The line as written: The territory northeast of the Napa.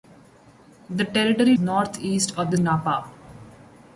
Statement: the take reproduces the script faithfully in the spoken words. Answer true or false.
true